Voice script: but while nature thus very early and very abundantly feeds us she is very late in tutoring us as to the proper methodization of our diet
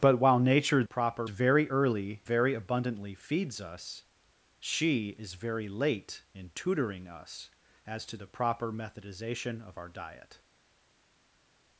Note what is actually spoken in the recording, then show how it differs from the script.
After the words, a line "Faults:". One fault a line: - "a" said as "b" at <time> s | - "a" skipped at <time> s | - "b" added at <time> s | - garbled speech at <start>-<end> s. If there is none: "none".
but while nature proper very early very abundantly feeds us she is very late in tutoring us as to the proper methodization of our diet
Faults:
- "thus" said as "proper" at 0.8 s
- "and" skipped at 2.2 s